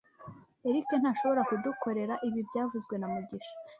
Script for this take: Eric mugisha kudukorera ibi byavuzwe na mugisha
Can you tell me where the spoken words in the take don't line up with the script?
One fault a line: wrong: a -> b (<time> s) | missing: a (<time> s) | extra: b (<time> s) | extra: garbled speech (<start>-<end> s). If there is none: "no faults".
wrong: mugisha -> ntashobora (1.0 s)